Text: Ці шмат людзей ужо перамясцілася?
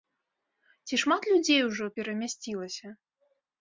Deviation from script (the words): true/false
false